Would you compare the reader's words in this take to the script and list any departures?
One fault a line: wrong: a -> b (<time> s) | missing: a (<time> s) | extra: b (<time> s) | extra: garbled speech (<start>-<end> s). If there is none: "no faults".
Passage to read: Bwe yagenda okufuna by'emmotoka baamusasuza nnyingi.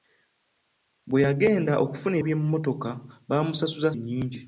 no faults